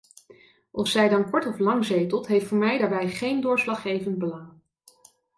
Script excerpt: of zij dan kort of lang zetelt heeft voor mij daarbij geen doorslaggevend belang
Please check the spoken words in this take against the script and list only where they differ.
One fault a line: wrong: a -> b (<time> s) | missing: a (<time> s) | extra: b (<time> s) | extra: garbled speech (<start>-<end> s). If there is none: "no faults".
no faults